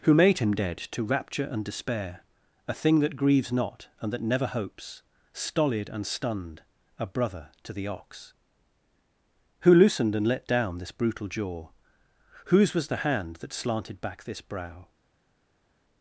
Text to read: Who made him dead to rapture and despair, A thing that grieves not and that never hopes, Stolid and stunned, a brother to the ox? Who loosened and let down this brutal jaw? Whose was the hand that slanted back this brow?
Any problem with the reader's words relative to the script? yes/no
no